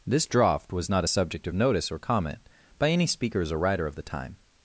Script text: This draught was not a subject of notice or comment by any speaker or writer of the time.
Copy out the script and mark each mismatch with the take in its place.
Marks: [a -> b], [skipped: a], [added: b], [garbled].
This draught was not a subject of notice or comment by any [speaker -> speakers] or writer of the time.